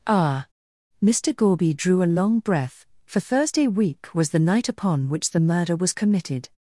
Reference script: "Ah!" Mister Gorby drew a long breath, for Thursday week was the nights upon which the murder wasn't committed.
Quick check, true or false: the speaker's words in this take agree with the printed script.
false